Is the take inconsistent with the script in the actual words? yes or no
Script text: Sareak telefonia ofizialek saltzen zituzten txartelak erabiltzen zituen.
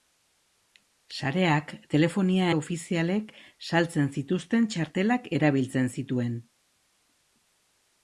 no